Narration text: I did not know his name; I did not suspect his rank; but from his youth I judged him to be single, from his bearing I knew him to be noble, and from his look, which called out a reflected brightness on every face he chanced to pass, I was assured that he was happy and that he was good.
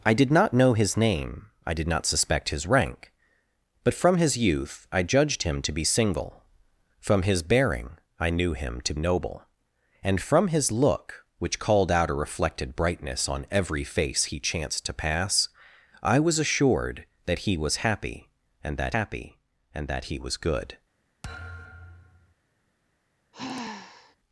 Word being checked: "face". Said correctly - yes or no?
yes